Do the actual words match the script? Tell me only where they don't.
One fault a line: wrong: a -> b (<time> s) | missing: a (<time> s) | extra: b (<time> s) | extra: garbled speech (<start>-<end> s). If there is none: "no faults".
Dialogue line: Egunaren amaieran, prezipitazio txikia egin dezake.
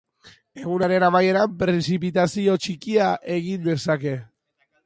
no faults